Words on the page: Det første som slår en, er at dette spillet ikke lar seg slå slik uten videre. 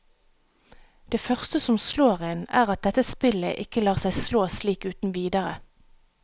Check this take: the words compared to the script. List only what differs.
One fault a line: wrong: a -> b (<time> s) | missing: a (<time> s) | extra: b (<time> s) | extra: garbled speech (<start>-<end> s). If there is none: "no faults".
no faults